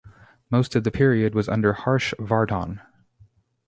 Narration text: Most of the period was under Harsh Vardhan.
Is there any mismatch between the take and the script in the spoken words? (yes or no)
no